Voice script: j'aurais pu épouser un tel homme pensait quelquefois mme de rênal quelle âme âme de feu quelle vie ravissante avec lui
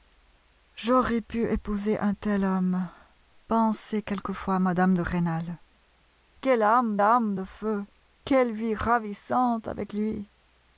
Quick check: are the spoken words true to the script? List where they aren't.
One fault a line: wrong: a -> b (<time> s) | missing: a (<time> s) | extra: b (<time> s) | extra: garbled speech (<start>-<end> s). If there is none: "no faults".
no faults